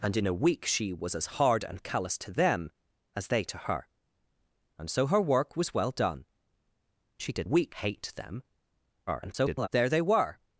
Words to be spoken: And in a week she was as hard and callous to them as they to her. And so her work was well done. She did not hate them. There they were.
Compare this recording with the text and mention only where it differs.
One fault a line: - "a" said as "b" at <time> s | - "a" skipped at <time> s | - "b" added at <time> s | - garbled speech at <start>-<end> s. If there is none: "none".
- "not" said as "week" at 7.4 s
- garbled speech at 9.1-9.7 s